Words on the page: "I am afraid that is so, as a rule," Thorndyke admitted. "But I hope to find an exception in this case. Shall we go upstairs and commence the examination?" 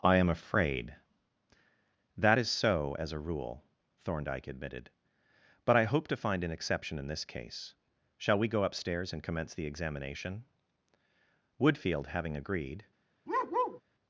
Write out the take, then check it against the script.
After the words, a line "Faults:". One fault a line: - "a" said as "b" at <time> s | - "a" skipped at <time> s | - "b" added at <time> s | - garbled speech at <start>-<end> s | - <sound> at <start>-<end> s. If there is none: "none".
"I am afraid that is so, as a rule," Thorndyke admitted. "But I hope to find an exception in this case. Shall we go upstairs and commence the examination?" Woodfield having agreed
Faults:
- "Woodfield having agreed" added at 11.6 s
- bark at 13.3-13.8 s